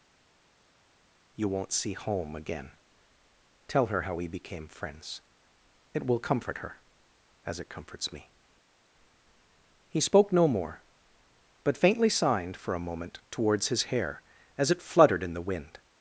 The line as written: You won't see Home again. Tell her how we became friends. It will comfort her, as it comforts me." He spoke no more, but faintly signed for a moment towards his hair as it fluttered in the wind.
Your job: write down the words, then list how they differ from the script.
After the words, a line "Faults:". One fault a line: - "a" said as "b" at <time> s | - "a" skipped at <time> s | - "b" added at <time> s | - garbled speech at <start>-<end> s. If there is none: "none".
You won't see Home again. Tell her how we became friends. It will comfort her, as it comforts me." He spoke no more, but faintly signed for a moment towards his hair as it fluttered in the wind.
Faults:
none